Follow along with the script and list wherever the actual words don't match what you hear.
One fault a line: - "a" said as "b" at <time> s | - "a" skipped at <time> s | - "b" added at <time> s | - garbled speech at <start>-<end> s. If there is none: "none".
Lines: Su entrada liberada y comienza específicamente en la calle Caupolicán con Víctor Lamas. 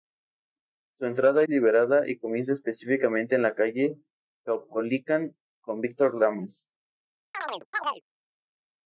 none